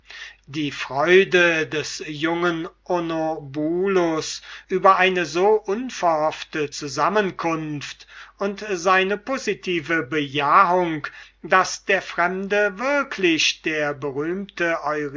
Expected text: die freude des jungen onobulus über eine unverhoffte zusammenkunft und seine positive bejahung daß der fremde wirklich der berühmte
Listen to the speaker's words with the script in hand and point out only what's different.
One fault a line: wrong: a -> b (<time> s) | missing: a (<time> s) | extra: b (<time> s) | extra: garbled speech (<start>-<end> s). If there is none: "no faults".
extra: so (5.2 s)